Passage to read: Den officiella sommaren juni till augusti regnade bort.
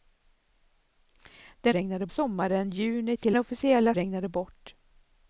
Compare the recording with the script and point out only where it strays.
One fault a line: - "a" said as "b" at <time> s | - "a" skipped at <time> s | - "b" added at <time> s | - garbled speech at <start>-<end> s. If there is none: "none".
- "officiella" said as "regnade" at 1.7 s
- "augusti" said as "officiella" at 3.4 s